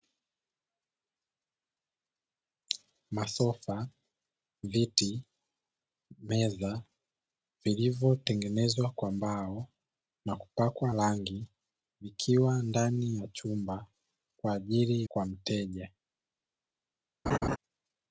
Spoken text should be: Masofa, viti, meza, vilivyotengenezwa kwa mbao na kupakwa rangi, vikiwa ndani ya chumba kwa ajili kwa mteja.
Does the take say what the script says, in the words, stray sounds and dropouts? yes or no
no